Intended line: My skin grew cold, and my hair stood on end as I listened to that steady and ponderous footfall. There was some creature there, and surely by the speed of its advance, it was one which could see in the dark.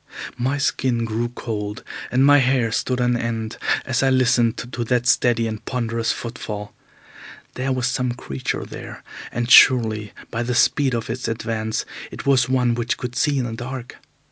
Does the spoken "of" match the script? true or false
true